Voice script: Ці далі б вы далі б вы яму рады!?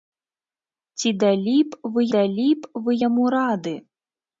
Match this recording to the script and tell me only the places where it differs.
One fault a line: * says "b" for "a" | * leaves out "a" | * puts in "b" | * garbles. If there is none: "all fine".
all fine